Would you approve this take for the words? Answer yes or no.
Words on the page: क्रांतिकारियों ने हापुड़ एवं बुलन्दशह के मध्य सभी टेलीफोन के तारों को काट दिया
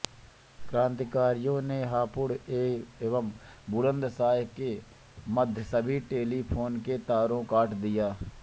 no